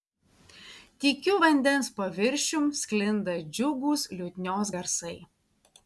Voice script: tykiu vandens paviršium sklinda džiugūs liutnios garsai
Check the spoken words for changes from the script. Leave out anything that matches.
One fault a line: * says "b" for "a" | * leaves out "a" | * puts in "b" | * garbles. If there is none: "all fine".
all fine